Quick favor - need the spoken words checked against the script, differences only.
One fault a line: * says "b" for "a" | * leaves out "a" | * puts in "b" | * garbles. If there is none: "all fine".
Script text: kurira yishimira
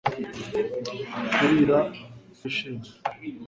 all fine